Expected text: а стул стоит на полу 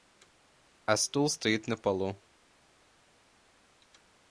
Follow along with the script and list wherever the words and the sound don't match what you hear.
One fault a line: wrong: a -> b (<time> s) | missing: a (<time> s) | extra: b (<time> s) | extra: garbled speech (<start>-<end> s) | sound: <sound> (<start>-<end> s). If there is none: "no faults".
no faults